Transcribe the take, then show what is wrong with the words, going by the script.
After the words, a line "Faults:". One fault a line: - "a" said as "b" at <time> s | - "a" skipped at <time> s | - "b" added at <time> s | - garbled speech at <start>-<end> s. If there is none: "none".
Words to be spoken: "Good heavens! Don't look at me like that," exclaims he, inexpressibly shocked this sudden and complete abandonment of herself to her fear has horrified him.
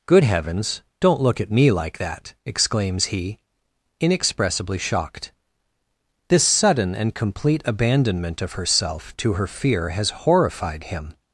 "Good heavens! Don't look at me like that," exclaims he, inexpressibly shocked this sudden and complete abandonment of herself to her fear has horrified him.
Faults:
none